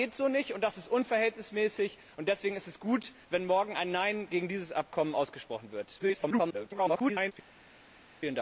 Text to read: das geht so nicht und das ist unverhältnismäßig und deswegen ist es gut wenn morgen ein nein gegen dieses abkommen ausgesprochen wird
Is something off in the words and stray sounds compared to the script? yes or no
yes